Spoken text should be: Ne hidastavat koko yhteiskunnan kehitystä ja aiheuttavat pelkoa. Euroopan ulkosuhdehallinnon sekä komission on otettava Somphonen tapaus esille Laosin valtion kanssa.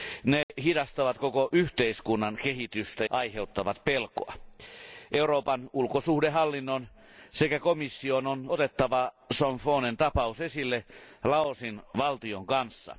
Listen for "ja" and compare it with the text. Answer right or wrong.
wrong